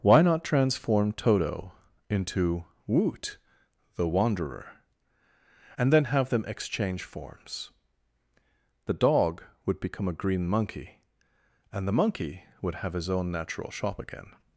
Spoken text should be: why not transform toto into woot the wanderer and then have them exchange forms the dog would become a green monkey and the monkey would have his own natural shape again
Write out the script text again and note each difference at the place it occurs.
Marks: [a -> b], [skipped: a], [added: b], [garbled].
why not transform toto into woot the wanderer and then have them exchange forms the dog would become a green monkey and the monkey would have his own natural [shape -> shop] again